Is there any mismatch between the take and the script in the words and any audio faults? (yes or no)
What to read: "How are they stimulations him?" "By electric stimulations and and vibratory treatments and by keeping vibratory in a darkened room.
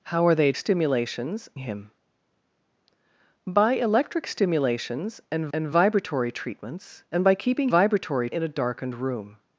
no